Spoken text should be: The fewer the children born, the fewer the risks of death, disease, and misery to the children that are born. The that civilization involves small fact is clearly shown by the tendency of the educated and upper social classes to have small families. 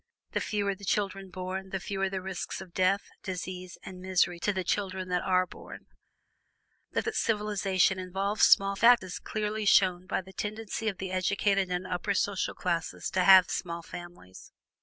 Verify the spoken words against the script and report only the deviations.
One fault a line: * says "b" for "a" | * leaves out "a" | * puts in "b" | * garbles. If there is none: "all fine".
all fine